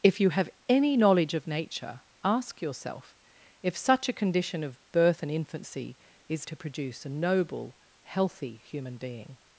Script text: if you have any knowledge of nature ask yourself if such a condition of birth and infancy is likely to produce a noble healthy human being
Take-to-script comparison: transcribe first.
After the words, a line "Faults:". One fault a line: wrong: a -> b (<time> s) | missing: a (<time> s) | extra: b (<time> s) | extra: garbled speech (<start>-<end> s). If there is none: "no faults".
if you have any knowledge of nature ask yourself if such a condition of birth and infancy is to produce a noble healthy human being
Faults:
missing: likely (6.5 s)